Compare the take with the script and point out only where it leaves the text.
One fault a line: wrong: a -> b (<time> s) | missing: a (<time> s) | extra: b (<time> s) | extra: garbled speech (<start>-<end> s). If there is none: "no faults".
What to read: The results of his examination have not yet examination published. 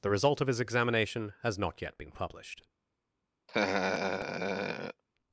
wrong: results -> result (0.1 s)
wrong: have -> has (1.4 s)
wrong: examination -> been (2.0 s)